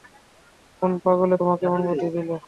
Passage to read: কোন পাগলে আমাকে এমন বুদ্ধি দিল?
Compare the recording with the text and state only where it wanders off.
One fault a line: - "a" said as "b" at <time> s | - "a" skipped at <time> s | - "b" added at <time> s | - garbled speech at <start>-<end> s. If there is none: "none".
- "আমাকে" said as "তোমাকে" at 1.4 s